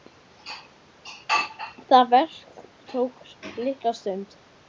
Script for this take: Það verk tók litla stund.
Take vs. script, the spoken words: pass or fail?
pass